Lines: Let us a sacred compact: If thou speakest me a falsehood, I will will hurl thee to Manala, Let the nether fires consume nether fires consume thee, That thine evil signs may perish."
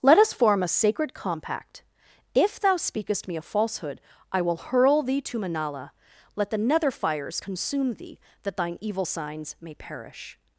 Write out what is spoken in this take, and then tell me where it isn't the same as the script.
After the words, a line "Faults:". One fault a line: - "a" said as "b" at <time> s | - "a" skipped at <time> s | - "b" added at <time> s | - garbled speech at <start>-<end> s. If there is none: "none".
Let us form a sacred compact: If thou speakest me a falsehood, I will hurl thee to Manala, Let the nether fires consume thee, That thine evil signs may perish."
Faults:
- "form" added at 0.3 s
- "will" skipped at 4.6 s
- "nether fires consume" skipped at 7.9 s